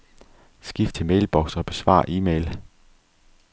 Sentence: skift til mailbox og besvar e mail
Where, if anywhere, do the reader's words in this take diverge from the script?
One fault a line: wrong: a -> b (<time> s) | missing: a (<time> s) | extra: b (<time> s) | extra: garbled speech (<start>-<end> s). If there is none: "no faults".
no faults